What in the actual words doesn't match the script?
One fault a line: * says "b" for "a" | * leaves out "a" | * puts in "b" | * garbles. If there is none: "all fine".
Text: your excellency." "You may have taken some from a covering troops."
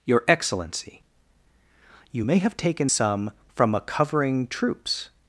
all fine